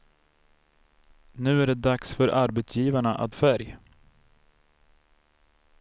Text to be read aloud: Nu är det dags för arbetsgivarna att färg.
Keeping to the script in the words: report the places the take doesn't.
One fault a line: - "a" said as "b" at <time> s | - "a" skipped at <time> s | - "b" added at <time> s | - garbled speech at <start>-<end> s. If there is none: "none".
none